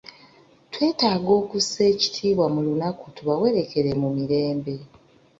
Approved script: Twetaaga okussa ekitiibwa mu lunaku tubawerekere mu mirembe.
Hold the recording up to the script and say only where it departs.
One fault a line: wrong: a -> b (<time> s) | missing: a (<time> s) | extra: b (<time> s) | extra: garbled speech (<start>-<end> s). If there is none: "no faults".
no faults